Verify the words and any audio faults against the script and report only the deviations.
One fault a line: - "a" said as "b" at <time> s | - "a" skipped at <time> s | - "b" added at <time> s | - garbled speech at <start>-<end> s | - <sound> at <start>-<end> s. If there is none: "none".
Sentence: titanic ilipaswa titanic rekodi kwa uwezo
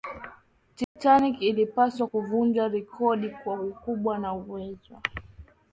- dropout at 0.8-1.0 s
- "titanic" said as "kuvunja" at 2.0 s
- "ukubwa na" added at 3.6 s